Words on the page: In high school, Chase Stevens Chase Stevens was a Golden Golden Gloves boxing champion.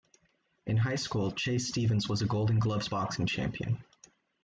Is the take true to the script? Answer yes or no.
no